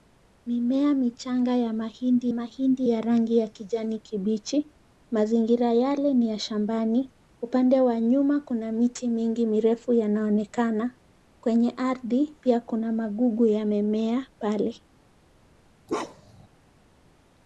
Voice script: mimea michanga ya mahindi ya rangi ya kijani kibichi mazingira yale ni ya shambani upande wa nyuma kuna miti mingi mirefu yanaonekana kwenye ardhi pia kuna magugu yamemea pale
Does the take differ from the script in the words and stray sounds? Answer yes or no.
yes